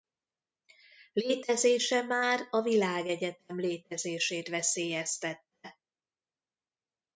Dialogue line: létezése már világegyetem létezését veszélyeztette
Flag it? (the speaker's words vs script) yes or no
yes